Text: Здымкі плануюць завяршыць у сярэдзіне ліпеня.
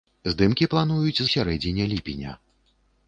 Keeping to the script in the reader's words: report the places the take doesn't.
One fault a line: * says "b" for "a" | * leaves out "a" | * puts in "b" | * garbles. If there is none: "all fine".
* leaves out "завяршыць"